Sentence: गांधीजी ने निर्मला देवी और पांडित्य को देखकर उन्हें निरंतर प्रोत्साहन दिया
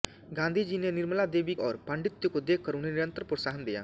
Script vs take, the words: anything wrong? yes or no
no